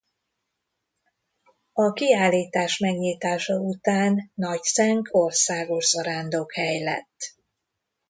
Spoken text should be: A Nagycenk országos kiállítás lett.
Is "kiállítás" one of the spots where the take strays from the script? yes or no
yes